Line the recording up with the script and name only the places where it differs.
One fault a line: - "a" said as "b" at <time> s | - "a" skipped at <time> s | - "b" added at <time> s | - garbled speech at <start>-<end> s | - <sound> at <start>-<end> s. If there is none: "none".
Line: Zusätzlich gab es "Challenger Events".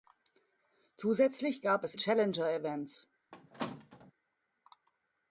- squeak at 3.3-4.1 s